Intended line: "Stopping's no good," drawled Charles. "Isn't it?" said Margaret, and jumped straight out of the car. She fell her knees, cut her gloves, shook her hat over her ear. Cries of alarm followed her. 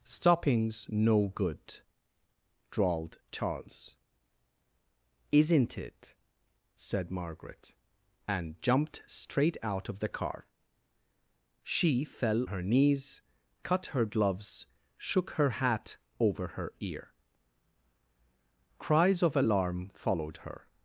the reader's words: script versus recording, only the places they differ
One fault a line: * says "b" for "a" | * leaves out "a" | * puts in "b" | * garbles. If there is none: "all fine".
all fine